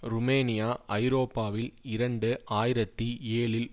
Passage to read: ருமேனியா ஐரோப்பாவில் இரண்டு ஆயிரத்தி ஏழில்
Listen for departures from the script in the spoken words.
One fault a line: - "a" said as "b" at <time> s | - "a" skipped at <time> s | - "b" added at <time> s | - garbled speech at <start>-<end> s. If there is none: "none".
none